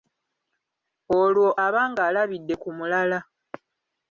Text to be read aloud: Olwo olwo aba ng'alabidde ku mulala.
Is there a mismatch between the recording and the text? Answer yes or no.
yes